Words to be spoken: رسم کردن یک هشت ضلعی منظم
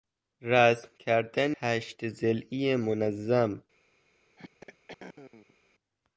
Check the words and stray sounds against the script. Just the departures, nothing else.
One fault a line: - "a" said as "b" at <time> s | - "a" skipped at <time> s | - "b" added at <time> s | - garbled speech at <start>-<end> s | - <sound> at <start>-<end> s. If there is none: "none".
- "یک" skipped at 1.5 s
- throat clearing at 4.4-5.6 s